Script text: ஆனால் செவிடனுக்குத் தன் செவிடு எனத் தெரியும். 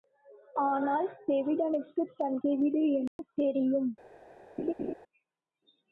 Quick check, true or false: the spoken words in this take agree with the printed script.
true